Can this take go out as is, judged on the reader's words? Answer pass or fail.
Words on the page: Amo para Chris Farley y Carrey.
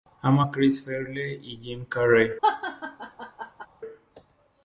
fail